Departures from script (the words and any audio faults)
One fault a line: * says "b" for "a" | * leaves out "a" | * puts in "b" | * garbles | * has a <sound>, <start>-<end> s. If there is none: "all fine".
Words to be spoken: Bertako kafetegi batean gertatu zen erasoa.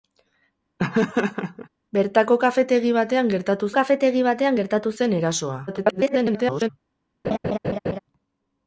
* has a laugh, 0.8-1.7 s
* puts in "kafetegi batean gertatu"
* garbles
* has a laugh, 7.2-8.0 s